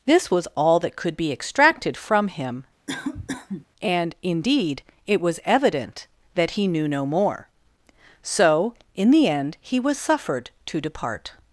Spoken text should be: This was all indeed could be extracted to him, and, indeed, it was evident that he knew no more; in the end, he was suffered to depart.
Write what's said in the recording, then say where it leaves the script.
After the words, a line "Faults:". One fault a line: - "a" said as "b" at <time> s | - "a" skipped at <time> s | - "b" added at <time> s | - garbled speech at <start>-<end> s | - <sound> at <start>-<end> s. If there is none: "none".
This was all that could be extracted from him, and, indeed, it was evident that he knew no more; so, in the end, he was suffered to depart.
Faults:
- "indeed" said as "that" at 0.8 s
- "to" said as "from" at 1.9 s
- cough at 2.9-3.7 s
- "so" added at 8.2 s